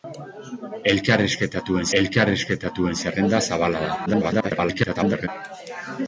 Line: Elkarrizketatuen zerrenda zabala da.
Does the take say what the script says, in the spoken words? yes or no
no